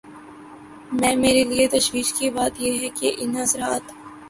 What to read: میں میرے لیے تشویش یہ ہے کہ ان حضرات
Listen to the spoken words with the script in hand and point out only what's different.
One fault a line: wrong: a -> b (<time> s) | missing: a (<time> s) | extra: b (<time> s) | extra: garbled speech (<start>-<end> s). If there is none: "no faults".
extra: کی بات (2.1 s)